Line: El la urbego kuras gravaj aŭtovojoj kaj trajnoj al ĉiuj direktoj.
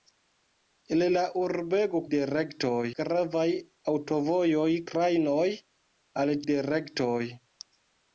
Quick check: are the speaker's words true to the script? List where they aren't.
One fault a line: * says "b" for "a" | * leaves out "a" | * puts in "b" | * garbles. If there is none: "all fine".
* says "direktoj" for "kuras"
* leaves out "kaj"
* leaves out "ĉiuj"